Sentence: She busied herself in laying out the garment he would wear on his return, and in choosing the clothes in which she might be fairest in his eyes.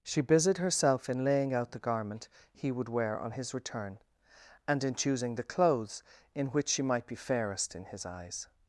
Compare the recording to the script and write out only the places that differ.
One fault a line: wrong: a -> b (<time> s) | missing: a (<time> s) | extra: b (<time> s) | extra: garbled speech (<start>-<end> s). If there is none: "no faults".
no faults